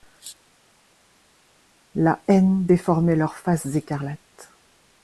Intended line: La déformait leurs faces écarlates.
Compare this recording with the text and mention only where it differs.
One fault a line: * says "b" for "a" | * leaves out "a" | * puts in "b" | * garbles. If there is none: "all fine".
* puts in "haine"